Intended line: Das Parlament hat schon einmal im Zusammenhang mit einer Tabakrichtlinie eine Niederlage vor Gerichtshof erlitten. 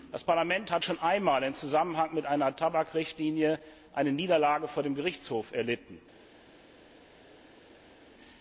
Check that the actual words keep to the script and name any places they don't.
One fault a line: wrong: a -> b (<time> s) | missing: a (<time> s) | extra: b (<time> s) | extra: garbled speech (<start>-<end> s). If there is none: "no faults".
extra: dem (4.8 s)